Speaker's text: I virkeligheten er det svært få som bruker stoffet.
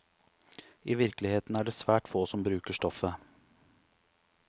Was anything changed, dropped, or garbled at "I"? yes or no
no